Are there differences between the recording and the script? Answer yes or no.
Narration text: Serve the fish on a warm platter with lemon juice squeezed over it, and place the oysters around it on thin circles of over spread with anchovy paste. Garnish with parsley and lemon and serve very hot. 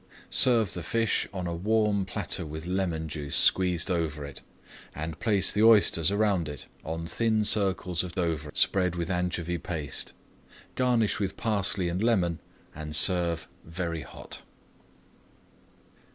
no